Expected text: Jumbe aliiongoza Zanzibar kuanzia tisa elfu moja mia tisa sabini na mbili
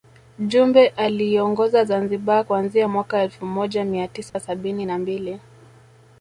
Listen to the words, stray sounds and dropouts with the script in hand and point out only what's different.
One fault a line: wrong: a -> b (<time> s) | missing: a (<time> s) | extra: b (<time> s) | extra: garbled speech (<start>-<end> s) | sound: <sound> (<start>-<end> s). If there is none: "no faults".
wrong: tisa -> mwaka (2.9 s)
sound: dropout (4.3-4.3 s)